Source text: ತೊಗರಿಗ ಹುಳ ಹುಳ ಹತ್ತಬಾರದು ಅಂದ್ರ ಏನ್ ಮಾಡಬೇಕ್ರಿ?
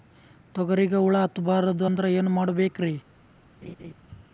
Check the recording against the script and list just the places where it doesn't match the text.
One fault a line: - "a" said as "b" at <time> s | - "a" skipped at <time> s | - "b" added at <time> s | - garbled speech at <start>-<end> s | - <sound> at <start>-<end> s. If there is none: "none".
- "ಹುಳ" skipped at 1.2 s
- laugh at 3.6-3.9 s